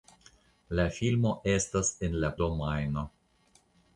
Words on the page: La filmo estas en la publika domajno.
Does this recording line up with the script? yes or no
no